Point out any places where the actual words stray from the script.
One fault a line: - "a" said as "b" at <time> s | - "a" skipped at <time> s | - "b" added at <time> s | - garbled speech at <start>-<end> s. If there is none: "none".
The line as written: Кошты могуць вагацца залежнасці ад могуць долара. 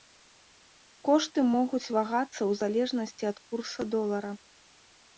- "ў" added at 2.4 s
- "могуць" said as "курса" at 3.5 s